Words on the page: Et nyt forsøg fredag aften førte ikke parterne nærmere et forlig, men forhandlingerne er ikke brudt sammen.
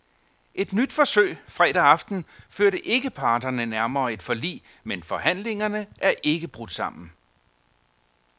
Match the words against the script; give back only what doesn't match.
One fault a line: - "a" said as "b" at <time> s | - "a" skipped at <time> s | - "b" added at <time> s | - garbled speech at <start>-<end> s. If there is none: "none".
none